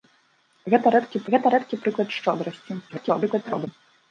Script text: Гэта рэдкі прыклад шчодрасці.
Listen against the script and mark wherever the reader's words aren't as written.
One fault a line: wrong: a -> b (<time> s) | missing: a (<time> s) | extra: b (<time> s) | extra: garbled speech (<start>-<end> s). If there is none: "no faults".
extra: гэта рэдкі (1.4 s)
extra: garbled speech (2.9-3.7 s)